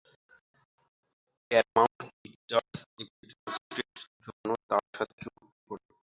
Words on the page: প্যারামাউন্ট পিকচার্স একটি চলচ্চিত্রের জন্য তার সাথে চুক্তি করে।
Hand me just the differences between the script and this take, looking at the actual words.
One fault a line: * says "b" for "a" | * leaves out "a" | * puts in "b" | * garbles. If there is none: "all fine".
all fine